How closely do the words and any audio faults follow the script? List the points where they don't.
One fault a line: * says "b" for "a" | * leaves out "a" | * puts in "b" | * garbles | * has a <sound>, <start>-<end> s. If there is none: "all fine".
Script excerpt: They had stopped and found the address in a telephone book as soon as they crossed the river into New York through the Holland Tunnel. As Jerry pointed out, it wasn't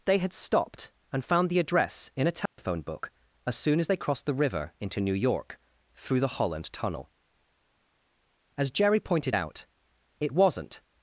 * has a dropout, 2.5-2.6 s